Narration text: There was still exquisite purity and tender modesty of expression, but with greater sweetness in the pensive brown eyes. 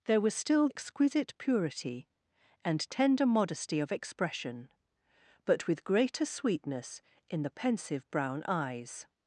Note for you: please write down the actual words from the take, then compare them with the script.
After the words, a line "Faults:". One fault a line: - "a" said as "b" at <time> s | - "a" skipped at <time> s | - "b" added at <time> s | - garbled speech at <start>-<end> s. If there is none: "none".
There was still exquisite purity and tender modesty of expression, but with greater sweetness in the pensive brown eyes.
Faults:
none